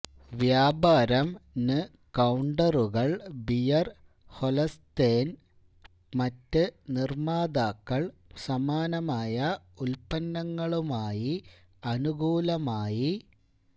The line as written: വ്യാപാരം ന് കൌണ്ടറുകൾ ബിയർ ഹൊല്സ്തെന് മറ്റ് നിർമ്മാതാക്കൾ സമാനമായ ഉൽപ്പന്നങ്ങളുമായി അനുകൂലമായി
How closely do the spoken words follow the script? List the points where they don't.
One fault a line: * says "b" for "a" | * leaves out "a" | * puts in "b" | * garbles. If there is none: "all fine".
all fine